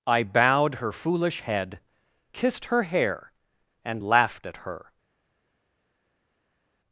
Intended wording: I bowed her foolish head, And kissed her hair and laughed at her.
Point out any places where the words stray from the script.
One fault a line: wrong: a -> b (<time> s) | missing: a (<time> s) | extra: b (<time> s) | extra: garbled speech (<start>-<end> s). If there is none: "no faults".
missing: And (1.8 s)